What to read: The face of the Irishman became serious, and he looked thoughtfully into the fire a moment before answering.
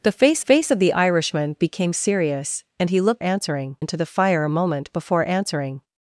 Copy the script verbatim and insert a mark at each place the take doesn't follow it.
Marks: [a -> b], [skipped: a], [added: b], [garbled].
The face [added: face] of the Irishman became serious, and he looked [thoughtfully -> answering] into the fire a moment before answering.